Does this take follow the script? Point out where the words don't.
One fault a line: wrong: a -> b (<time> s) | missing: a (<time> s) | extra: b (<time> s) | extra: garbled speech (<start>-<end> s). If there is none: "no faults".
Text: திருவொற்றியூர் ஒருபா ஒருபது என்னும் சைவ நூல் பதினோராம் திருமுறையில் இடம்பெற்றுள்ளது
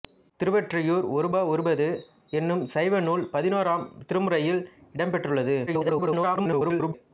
extra: garbled speech (5.7-6.9 s)